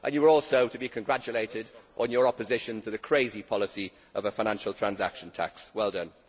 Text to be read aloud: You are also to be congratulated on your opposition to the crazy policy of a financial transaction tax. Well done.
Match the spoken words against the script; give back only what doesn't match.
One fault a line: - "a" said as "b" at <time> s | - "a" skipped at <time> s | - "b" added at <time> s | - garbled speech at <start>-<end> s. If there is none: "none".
none